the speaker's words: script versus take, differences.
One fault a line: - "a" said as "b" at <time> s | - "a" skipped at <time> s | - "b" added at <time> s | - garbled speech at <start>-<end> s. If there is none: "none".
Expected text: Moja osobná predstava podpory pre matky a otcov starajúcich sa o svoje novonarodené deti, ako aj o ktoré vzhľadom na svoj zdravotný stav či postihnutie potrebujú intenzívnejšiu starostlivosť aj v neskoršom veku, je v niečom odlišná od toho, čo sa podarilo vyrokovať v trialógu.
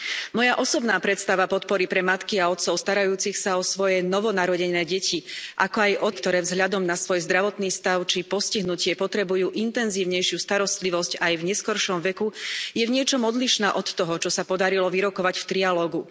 none